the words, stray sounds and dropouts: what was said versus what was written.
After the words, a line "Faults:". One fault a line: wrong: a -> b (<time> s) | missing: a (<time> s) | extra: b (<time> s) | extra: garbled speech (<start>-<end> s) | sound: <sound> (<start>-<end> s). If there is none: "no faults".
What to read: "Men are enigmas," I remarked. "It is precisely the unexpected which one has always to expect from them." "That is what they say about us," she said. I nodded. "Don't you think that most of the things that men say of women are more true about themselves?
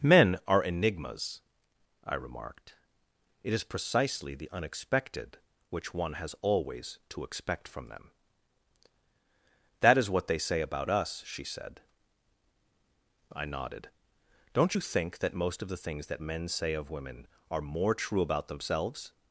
"Men are enigmas," I remarked. "It is precisely the unexpected which one has always to expect from them." "That is what they say about us," she said. I nodded. "Don't you think that most of the things that men say of women are more true about themselves?
Faults:
no faults